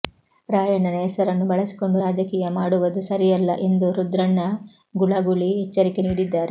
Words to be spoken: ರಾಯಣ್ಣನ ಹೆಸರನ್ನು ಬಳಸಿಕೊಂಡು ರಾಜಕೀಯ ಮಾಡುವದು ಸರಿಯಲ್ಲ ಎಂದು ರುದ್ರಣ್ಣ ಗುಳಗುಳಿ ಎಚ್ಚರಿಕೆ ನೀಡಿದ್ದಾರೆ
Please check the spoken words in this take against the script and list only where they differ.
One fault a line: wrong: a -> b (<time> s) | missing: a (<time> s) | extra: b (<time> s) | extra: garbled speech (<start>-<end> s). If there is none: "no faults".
no faults